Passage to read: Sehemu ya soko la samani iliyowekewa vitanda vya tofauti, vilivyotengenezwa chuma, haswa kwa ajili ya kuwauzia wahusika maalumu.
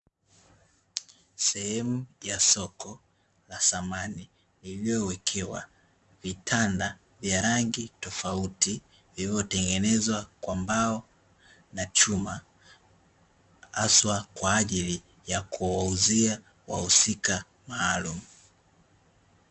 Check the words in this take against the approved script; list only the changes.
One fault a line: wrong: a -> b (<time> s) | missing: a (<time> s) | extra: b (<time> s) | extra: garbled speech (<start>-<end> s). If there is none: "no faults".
extra: rangi (7.4 s)
extra: kwa mbao na (10.4 s)